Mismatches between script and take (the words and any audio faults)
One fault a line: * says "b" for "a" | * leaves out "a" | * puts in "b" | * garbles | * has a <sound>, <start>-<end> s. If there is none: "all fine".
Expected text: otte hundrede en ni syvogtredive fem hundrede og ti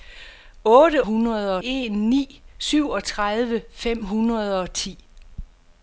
all fine